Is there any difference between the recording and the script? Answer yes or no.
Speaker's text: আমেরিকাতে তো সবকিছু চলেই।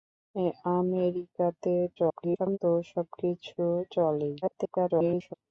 yes